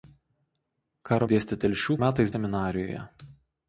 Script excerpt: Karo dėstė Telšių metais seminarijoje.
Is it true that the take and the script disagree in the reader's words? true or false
false